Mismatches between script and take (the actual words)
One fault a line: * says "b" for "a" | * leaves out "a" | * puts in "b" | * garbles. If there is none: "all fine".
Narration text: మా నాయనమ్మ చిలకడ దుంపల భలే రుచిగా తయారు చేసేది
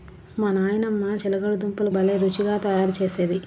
all fine